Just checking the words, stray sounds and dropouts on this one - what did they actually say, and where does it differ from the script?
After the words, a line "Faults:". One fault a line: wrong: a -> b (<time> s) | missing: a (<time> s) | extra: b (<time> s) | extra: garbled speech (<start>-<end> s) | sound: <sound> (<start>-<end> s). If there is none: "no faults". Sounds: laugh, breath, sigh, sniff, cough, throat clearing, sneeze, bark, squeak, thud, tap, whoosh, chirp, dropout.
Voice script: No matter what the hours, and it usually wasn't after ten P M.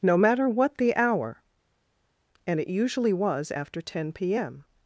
No matter what the hour, and it usually was after ten P M.
Faults:
wrong: hours -> hour (0.9 s)
wrong: wasn't -> was (3.1 s)